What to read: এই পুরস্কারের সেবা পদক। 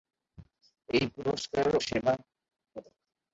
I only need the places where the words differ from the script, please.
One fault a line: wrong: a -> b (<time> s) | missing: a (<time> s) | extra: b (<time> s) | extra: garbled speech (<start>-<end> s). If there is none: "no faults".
no faults